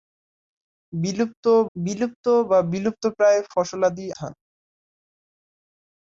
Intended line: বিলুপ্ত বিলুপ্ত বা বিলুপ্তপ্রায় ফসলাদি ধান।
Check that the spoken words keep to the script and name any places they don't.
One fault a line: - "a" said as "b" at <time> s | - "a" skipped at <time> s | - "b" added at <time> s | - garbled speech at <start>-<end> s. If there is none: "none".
none